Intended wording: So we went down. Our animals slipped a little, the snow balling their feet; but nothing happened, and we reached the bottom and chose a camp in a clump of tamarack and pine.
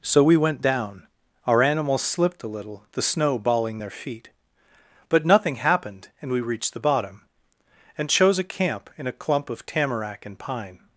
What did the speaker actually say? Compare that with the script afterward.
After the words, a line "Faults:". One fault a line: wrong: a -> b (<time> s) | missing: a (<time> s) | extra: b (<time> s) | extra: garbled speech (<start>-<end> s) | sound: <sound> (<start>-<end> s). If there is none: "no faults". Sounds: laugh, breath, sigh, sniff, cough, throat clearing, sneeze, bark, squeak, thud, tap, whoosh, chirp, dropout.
So we went down. Our animals slipped a little, the snow balling their feet; but nothing happened, and we reached the bottom and chose a camp in a clump of tamarack and pine.
Faults:
no faults